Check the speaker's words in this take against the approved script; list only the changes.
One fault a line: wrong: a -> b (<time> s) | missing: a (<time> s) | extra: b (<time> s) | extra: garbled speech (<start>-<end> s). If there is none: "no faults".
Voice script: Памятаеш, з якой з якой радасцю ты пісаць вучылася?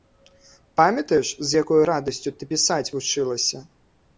missing: з якой (1.8 s)